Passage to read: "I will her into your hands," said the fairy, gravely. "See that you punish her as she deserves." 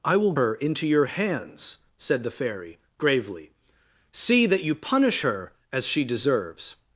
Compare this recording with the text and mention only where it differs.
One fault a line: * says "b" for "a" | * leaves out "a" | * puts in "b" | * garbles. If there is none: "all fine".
all fine